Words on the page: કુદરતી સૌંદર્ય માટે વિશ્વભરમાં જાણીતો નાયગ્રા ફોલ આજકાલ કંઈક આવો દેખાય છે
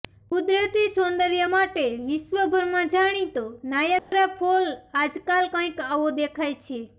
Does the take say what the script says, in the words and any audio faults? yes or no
no